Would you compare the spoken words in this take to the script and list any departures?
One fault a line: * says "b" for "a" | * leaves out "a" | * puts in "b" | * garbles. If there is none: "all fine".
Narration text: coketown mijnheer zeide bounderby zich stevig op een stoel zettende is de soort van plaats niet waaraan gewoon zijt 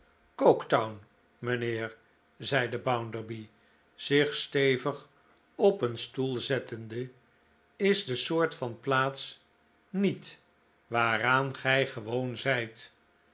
* puts in "gij"